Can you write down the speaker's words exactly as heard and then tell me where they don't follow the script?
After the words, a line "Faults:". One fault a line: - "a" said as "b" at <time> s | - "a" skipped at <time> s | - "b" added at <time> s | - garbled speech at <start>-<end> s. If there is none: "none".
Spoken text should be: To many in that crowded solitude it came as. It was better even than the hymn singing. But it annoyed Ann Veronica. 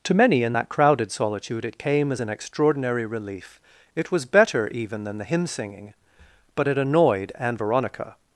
To many in that crowded solitude it came as an extraordinary relief. It was better even than the hymn singing. But it annoyed Ann Veronica.
Faults:
- "an extraordinary relief" added at 2.2 s